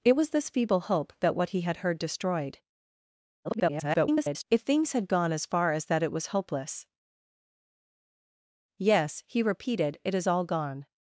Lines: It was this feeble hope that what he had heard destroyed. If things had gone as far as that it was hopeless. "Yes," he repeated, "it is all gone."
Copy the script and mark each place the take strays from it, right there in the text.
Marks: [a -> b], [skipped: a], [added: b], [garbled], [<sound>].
It was this feeble hope that what he had heard destroyed. [garbled] If things had gone as far as that it was hopeless. "Yes," he repeated, "it is all gone."